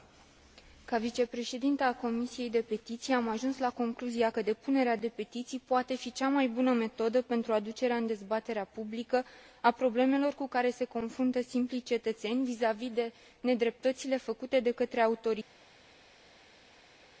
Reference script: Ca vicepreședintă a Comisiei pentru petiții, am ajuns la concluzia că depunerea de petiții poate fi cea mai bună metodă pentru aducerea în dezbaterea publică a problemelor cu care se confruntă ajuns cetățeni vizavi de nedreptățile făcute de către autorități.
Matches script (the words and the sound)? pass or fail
fail